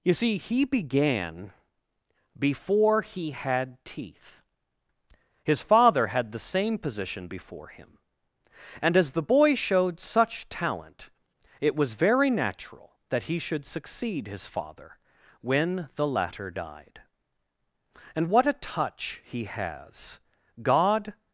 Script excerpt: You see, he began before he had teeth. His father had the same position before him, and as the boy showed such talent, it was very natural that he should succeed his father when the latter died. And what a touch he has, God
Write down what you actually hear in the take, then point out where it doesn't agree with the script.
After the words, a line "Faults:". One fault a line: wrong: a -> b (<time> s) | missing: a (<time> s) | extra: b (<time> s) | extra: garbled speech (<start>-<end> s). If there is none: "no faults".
You see, he began before he had teeth. His father had the same position before him, and as the boy showed such talent, it was very natural that he should succeed his father when the latter died. And what a touch he has, God
Faults:
no faults